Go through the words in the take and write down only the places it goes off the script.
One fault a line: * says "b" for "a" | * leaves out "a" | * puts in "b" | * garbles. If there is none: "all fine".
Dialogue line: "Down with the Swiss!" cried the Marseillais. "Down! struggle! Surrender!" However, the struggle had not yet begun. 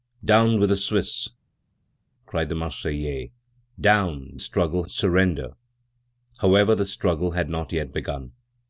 all fine